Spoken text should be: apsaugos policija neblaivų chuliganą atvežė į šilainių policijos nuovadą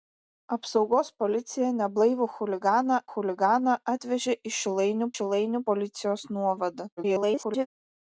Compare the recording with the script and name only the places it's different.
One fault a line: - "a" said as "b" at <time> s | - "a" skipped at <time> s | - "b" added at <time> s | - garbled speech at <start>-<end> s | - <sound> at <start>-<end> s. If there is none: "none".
- "chuliganą" added at 3.1 s
- "šilainių" added at 5.1 s
- garbled speech at 7.0-7.7 s